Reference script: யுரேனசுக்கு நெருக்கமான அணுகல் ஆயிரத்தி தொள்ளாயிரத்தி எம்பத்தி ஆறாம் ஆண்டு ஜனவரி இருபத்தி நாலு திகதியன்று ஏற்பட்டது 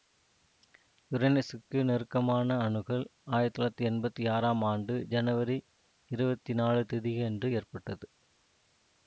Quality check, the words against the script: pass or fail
pass